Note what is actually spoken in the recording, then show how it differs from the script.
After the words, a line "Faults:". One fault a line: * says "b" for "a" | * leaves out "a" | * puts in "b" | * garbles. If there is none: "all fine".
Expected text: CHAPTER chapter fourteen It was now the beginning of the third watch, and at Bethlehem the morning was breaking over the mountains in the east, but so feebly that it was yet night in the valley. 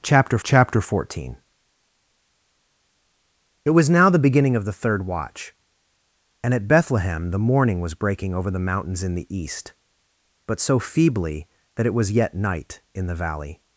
CHAPTER chapter fourteen It was now the beginning of the third watch, and at Bethlehem the morning was breaking over the mountains in the east, but so feebly that it was yet night in the valley.
Faults:
all fine